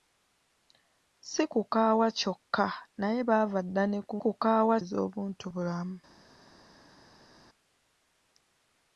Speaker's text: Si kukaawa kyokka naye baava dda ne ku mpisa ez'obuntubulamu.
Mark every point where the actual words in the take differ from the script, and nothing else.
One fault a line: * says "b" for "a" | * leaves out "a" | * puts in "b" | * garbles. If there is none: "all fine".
* says "kukaawa" for "mpisa"